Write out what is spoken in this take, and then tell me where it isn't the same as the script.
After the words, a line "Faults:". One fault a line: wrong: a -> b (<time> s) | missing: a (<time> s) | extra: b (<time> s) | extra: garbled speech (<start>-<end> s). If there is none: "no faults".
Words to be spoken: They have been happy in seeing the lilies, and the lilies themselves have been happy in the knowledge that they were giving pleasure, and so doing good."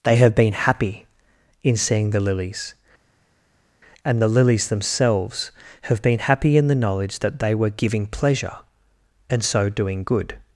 They have been happy in seeing the lilies, and the lilies themselves have been happy in the knowledge that they were giving pleasure, and so doing good."
Faults:
no faults